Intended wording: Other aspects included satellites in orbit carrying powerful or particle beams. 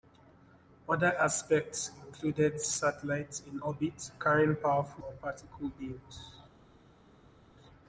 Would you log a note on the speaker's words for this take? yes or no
no